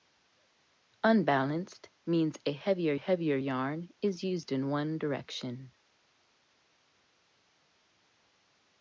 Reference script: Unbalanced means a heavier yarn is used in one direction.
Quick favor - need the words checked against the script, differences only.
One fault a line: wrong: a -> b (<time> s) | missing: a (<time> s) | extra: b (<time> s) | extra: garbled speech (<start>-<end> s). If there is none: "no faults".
extra: heavier (2.9 s)